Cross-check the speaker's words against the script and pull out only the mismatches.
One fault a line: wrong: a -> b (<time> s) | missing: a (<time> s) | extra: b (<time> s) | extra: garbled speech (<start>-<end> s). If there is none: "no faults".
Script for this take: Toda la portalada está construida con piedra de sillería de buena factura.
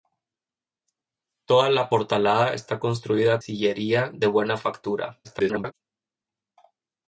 missing: con piedra de (3.4 s)
extra: garbled speech (5.2-5.7 s)